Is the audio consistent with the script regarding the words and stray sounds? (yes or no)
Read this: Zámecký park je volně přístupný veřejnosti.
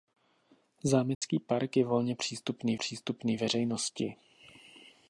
no